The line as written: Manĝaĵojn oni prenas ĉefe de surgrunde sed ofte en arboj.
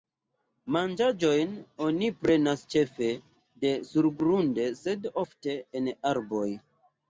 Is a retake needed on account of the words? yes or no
no